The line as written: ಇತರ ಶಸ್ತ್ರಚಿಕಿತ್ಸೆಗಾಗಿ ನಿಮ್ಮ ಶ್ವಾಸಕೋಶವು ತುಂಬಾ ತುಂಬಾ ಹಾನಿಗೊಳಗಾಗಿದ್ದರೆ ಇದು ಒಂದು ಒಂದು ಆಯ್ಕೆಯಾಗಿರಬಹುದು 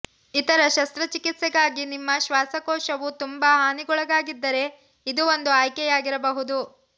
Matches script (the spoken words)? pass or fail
fail